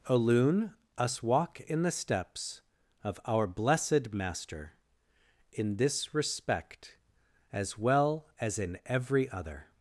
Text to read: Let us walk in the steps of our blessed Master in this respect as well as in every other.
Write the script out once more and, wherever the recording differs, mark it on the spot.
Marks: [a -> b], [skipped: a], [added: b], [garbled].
[Let -> Alun] us walk in the steps of our blessed Master in this respect as well as in every other.